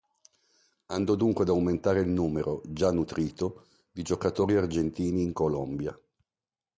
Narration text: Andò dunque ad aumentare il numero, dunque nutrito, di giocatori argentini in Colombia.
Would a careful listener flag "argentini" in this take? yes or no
no